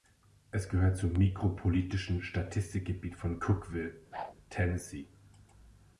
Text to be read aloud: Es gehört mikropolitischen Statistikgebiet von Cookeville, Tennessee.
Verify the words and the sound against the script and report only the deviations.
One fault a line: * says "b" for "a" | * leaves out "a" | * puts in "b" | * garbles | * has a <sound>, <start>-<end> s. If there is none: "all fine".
* puts in "zum"
* has a whoosh, 4.1-4.3 s